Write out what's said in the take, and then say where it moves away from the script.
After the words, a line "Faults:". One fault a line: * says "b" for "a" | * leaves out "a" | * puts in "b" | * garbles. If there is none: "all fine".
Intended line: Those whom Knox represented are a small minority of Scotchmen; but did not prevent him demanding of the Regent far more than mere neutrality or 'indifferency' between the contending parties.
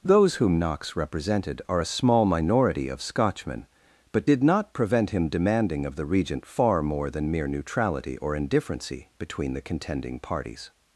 Those whom Knox represented are a small minority of Scotchmen; but did not prevent him demanding of the Regent far more than mere neutrality or 'indifferency' between the contending parties.
Faults:
all fine